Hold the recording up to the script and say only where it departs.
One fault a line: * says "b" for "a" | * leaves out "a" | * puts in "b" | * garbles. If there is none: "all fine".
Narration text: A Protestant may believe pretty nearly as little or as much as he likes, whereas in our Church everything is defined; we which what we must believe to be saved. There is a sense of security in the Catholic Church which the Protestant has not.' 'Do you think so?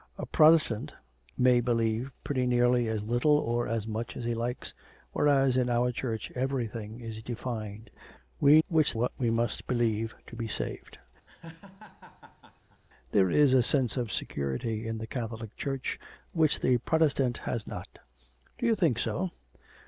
all fine